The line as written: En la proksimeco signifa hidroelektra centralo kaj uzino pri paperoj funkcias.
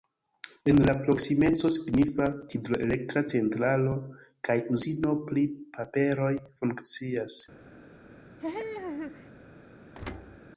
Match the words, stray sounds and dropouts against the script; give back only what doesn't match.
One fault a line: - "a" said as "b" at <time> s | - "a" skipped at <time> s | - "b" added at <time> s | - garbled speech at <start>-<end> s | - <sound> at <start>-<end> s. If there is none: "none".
- laugh at 8.4-9.3 s
- thud at 9.9-10.4 s